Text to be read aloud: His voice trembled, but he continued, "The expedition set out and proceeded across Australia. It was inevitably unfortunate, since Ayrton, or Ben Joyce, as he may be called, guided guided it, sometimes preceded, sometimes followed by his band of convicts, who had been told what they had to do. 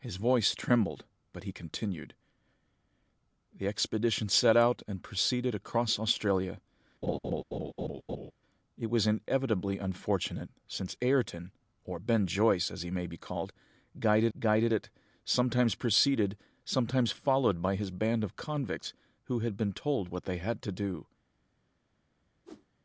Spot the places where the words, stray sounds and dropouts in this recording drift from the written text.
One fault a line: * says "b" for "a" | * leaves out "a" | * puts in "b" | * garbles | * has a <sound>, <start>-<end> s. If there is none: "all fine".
* has a laugh, 7.0-8.3 s
* has a whoosh, 22.4-22.7 s